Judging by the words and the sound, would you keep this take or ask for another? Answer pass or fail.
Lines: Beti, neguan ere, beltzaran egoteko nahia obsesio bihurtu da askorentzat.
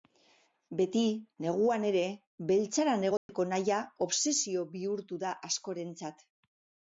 fail